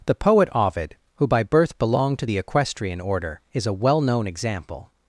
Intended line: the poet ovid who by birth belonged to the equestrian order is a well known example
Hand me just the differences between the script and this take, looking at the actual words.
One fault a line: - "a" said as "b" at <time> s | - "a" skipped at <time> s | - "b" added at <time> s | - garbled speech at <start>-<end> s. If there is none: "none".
none